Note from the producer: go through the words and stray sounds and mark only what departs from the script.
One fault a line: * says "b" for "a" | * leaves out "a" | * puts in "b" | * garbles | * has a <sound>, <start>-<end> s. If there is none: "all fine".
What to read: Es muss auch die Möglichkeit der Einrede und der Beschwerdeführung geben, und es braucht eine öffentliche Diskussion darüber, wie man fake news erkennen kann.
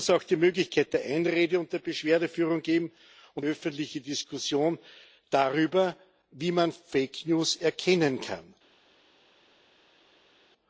* leaves out "es braucht eine"